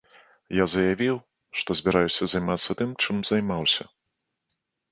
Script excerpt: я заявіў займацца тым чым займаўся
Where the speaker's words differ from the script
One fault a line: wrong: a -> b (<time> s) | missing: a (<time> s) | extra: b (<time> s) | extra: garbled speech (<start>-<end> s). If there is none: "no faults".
extra: што збіраюся (1.6 s)